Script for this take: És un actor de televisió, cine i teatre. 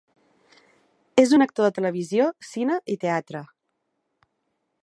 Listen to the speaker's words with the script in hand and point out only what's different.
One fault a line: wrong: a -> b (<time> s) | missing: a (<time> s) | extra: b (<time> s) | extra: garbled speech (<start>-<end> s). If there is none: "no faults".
no faults